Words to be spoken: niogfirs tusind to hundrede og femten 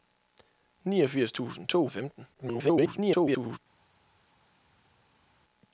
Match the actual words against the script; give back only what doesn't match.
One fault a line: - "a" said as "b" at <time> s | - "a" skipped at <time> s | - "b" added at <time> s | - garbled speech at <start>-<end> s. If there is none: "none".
- "hundrede" skipped at 1.9 s
- garbled speech at 2.3-3.6 s